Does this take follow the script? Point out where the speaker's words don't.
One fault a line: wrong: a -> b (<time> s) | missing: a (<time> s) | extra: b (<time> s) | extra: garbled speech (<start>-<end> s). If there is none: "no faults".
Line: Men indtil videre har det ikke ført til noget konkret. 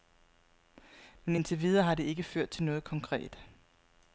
no faults